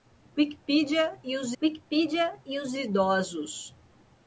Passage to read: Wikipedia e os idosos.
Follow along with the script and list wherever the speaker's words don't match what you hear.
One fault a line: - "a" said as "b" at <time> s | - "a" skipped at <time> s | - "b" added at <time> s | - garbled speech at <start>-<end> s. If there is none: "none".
- "wikipedia e os" added at 1.6 s